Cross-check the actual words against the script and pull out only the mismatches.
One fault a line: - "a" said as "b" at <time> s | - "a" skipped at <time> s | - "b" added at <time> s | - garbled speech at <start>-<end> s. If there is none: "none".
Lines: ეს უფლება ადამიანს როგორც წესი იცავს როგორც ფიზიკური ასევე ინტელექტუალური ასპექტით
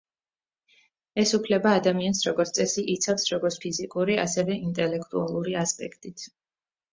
none